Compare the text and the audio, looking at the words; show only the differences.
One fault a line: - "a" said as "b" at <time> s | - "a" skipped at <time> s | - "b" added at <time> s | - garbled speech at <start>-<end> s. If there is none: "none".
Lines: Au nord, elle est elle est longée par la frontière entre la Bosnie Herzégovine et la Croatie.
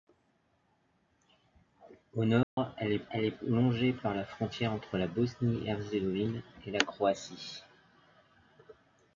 none